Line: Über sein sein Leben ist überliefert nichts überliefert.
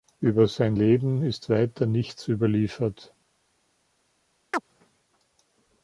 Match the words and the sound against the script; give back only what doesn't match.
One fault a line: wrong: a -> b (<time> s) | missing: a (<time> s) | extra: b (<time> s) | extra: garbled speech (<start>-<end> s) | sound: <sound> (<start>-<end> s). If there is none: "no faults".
missing: sein (0.8 s)
wrong: überliefert -> weiter (1.5 s)
sound: chirp (4.5-4.6 s)